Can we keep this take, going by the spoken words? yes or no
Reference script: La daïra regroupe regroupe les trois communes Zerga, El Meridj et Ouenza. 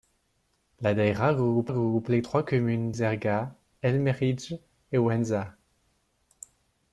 yes